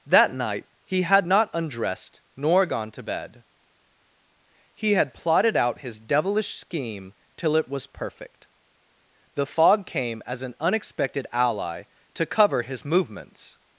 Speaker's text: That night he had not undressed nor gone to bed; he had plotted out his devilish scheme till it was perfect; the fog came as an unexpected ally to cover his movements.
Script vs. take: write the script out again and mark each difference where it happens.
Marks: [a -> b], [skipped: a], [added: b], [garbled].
That night he had not undressed nor gone to bed; he had plotted out his devilish scheme till it was perfect; the fog came as an unexpected ally to cover his movements.